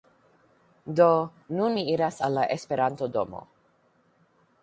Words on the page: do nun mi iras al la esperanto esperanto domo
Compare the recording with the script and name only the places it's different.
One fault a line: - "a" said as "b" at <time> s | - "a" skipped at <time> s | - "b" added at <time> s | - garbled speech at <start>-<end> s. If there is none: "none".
- "esperanto" skipped at 3.1 s